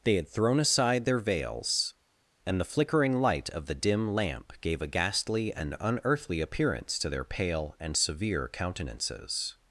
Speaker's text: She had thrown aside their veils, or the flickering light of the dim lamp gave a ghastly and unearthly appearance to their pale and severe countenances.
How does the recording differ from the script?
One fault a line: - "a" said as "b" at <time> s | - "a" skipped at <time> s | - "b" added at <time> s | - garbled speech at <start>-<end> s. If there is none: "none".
- "She" said as "They" at 0.0 s
- "or" said as "and" at 2.5 s